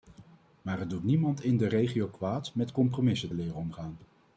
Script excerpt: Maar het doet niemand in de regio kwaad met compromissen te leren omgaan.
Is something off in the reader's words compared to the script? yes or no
yes